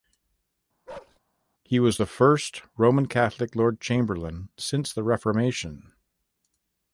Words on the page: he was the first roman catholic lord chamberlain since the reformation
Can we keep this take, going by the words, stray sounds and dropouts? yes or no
no